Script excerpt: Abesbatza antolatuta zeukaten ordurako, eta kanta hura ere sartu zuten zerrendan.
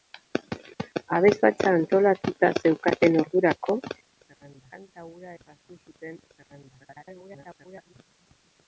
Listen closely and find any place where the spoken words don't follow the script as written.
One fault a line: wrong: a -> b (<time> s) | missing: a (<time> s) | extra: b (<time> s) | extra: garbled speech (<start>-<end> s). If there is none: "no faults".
wrong: eta -> zerrendan (4.2 s)
missing: ere (5.3 s)
extra: garbled speech (6.8-7.9 s)